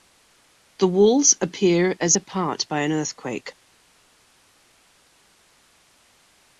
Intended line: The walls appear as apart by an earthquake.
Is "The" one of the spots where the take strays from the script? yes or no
no